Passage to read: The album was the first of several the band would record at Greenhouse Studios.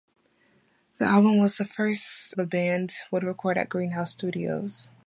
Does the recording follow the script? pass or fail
fail